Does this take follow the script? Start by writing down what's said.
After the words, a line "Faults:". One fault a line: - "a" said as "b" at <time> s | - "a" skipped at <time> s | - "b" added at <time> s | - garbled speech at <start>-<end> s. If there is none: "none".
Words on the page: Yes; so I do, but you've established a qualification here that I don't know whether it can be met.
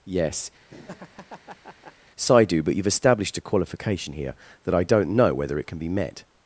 Yes; so I do, but you've established a qualification here that I don't know whether it can be met.
Faults:
none